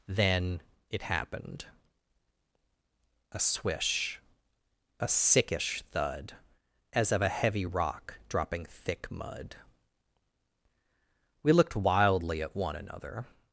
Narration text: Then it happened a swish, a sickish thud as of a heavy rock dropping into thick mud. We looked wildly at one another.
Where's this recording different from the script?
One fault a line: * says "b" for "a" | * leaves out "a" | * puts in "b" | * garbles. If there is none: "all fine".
* leaves out "into"